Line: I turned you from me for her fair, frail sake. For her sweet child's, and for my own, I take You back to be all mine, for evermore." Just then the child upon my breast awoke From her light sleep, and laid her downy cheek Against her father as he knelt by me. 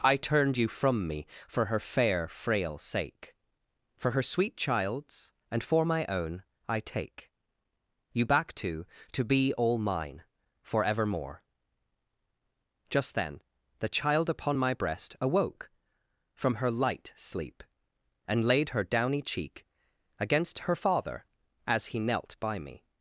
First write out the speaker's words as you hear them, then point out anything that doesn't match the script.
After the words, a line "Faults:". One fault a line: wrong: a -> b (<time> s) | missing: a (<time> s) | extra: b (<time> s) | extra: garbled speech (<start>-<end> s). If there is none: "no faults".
I turned you from me for her fair, frail sake. For her sweet child's, and for my own, I take You back to to be all mine, for evermore." Just then the child upon my breast awoke From her light sleep, and laid her downy cheek Against her father as he knelt by me.
Faults:
extra: to (9.1 s)